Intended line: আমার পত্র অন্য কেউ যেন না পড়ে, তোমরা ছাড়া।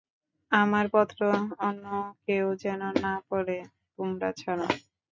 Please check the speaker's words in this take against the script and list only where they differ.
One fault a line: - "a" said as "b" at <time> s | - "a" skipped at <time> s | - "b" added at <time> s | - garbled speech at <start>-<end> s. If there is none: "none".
none